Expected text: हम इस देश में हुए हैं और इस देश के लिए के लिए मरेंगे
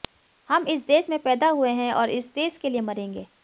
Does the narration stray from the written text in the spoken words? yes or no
yes